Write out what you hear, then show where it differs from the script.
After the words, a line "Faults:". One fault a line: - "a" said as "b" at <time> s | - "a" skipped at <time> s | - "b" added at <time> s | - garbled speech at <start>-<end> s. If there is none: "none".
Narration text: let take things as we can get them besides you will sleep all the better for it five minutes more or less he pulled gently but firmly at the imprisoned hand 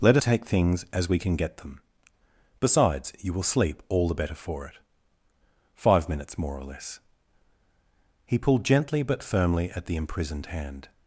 let take things as we can get them besides you will sleep all the better for it five minutes more or less he pulled gently but firmly at the imprisoned hand
Faults:
none